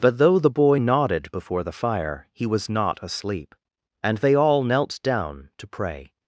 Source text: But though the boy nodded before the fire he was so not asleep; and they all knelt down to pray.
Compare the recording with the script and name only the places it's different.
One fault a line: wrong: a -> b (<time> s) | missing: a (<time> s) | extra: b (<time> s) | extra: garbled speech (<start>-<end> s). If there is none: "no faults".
missing: so (2.7 s)